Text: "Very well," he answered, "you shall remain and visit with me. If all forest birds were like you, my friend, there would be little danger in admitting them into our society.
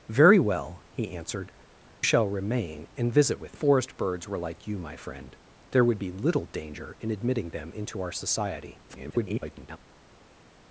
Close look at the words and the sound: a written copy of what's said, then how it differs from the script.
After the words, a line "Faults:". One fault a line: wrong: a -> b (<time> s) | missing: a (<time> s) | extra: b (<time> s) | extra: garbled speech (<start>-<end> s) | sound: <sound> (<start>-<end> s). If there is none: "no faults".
"Very well," he answered, "shall remain and visit with forest birds were like you, my friend, there would be little danger in admitting them into our society. [garbled]
Faults:
missing: you (1.5 s)
missing: me If all (3.6 s)
extra: garbled speech (8.9-9.8 s)